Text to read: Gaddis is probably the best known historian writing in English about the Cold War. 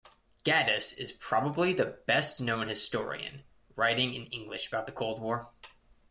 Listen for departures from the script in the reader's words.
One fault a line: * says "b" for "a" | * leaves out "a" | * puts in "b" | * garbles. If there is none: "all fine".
all fine